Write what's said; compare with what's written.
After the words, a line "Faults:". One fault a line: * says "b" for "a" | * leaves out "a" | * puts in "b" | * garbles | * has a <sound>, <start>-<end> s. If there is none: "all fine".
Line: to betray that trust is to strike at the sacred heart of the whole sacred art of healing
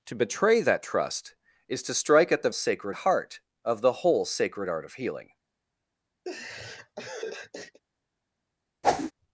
to betray that trust is to strike at the sacred heart of the whole sacred art of healing
Faults:
* has a laugh, 6.3-7.8 s
* has a whoosh, 8.8-9.1 s